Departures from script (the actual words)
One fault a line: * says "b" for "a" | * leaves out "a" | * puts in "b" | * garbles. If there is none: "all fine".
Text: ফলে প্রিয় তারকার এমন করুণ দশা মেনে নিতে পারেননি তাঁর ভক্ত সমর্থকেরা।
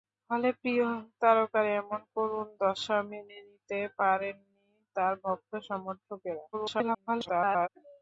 * garbles